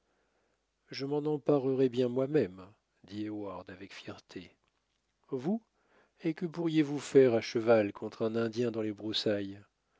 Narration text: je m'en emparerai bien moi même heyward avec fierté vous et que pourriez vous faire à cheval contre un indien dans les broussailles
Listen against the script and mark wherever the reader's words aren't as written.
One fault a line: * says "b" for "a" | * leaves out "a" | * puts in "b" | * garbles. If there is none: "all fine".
* puts in "dit"